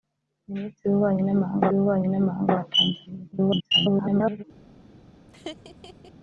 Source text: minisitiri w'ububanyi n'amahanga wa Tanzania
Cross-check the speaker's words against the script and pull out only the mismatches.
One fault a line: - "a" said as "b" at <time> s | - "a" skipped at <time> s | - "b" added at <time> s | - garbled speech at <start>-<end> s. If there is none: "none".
- "w'ububanyi n'amahanga" added at 1.7 s
- garbled speech at 3.3-4.4 s